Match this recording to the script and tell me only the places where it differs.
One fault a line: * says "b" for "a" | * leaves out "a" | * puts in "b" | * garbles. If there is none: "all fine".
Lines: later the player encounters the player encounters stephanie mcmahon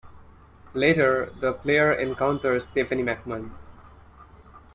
* leaves out "the player encounters"